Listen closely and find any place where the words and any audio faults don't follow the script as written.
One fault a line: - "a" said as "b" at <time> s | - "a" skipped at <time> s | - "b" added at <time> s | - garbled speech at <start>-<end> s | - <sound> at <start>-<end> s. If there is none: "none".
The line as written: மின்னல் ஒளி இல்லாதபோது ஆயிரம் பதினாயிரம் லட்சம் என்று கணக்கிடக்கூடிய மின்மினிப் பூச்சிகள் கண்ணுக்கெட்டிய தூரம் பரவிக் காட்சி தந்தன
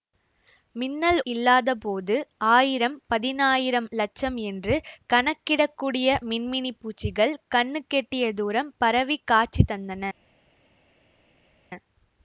- "ஒளி" skipped at 1.2 s